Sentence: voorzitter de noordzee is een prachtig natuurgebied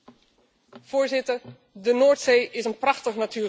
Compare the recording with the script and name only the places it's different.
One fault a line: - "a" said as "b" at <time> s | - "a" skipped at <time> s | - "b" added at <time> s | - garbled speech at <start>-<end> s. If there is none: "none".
none